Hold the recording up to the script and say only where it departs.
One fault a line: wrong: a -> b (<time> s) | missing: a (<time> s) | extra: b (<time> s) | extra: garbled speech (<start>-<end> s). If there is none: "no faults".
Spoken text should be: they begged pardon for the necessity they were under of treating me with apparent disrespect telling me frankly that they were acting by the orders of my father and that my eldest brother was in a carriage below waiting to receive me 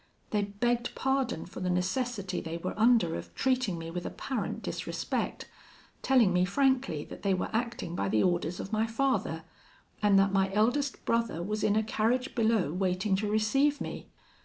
no faults